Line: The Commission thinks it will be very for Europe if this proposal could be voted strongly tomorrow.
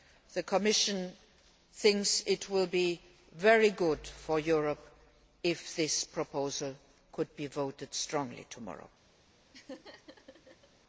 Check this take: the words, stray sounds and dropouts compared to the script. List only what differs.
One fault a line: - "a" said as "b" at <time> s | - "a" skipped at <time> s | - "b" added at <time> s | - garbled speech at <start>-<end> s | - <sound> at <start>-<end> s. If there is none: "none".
- "good" added at 3.7 s
- laugh at 9.5-10.7 s